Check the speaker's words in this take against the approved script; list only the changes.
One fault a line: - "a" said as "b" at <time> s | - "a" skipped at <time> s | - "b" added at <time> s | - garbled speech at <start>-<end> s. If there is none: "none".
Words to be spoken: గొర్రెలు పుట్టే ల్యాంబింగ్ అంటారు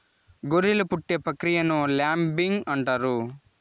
- "ప్రక్రియను" added at 1.3 s